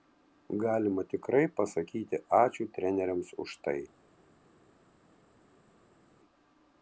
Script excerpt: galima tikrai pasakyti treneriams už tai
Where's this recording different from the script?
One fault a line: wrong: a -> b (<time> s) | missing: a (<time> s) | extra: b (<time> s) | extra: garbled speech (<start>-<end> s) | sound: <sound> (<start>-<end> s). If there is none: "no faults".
extra: ačiū (2.4 s)